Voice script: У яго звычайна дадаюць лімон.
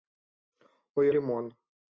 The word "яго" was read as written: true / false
false